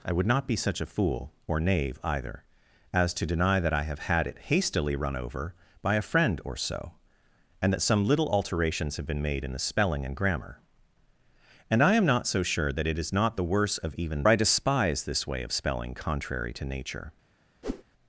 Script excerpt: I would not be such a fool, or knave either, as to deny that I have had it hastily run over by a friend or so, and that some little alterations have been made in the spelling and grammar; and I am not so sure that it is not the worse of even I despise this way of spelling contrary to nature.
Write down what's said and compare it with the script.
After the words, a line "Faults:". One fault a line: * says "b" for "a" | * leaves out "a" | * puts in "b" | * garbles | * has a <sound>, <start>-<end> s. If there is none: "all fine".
I would not be such a fool, or knave either, as to deny that I have had it hastily run over by a friend or so, and that some little alterations have been made in the spelling and grammar; and I am not so sure that it is not the worse of even I despise this way of spelling contrary to nature.
Faults:
* has a whoosh, 17.6-17.8 s